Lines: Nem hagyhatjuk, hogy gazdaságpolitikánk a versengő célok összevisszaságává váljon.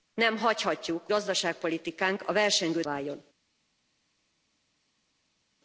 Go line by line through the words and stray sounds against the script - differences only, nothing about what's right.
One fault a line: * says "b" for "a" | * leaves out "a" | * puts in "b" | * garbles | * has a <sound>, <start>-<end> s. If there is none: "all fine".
* leaves out "hogy"
* leaves out "célok összevisszaságává"